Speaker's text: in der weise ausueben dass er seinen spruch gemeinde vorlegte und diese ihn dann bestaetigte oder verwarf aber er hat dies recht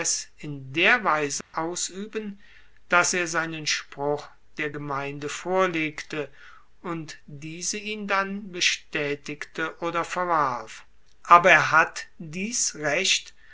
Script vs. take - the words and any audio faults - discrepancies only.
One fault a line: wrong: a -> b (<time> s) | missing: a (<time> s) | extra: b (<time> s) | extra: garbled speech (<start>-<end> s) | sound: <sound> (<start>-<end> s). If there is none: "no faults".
sound: dropout (1.4-1.5 s)
extra: der (4.6 s)